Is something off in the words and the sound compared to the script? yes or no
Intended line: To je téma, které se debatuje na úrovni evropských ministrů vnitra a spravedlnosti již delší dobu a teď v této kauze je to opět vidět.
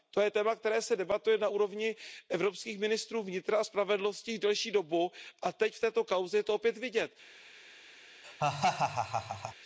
yes